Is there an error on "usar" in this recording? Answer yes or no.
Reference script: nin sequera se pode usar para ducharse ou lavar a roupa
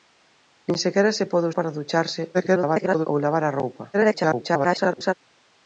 yes